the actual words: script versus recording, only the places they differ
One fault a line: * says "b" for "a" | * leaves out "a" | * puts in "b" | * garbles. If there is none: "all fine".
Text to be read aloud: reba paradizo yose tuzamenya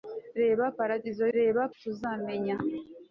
* says "reba" for "yose"